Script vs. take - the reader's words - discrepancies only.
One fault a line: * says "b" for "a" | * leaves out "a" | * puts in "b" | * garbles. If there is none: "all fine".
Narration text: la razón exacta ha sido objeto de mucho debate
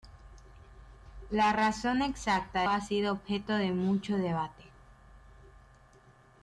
all fine